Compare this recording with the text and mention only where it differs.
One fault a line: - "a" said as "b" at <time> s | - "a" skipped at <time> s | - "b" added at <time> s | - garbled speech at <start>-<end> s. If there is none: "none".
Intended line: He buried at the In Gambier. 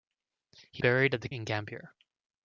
none